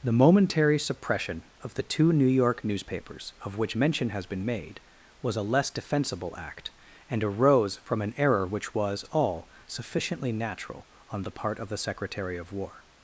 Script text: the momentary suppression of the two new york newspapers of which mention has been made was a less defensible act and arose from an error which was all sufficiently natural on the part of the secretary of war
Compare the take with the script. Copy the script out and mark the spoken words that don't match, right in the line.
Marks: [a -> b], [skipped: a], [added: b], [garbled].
the momentary suppression of the two new york newspapers of which mention has been made was a less defensible act and arose from an error which was all sufficiently natural on the part of the secretary of war